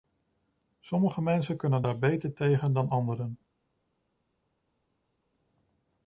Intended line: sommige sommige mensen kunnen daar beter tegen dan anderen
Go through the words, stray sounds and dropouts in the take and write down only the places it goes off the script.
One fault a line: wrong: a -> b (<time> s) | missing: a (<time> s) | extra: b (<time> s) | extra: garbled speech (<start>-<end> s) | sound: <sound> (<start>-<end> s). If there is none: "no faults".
missing: sommige (1.2 s)